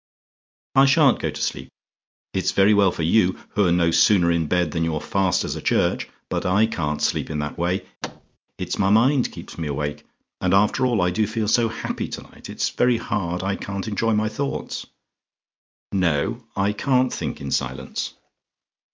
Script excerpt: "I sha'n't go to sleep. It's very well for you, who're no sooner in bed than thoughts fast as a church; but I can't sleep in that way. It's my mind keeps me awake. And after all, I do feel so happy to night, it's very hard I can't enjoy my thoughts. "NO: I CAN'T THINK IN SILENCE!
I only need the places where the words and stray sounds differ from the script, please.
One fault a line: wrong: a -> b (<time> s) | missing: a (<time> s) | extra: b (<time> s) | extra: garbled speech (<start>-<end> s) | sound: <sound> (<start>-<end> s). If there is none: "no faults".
wrong: thoughts -> you're (4.8 s)
sound: thud (8.0-8.4 s)